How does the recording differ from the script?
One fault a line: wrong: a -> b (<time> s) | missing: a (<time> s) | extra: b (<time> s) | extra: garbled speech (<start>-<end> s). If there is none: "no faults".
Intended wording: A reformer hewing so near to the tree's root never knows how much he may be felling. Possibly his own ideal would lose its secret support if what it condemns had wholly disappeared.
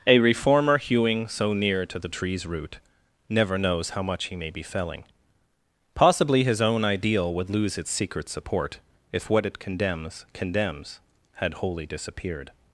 extra: condemns (10.3 s)